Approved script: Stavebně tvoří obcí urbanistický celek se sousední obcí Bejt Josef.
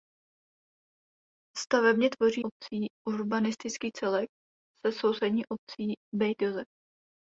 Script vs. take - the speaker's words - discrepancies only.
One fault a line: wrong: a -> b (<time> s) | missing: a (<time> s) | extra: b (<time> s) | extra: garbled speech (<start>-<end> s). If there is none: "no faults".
no faults